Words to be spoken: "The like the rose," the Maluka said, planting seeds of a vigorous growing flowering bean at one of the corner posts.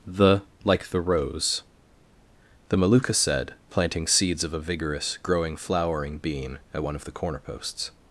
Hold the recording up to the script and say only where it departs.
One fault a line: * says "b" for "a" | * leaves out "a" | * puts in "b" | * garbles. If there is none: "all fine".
all fine